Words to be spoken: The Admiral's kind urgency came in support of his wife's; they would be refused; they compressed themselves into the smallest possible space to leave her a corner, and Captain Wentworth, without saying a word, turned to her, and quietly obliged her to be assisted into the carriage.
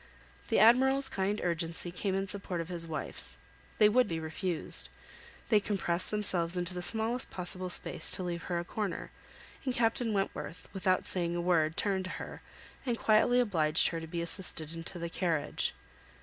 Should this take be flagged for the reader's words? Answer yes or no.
no